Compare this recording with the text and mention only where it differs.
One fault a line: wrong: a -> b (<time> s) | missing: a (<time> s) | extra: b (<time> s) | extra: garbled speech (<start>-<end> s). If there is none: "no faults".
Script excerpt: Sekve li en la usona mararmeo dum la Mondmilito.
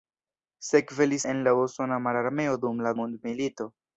no faults